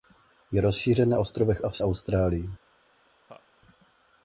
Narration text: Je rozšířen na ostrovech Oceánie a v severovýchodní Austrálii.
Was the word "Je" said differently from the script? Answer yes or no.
no